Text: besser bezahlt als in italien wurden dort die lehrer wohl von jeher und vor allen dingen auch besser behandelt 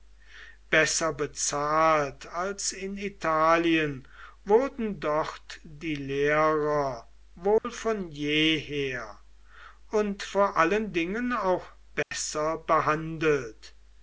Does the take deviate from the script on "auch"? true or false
false